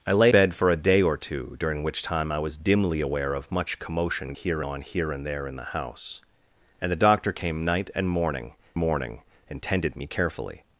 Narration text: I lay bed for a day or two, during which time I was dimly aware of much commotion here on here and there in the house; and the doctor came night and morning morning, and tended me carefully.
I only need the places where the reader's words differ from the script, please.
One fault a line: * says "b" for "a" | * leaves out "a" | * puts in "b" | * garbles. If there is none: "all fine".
all fine